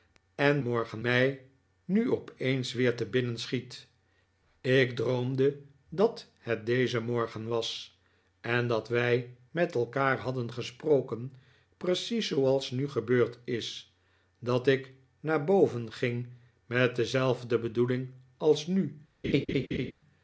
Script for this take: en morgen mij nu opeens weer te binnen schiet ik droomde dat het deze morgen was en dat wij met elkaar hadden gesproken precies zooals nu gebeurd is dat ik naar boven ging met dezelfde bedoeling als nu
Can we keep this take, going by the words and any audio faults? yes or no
no